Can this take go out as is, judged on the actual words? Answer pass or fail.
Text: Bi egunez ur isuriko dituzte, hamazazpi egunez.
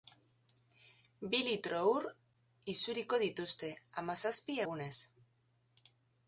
fail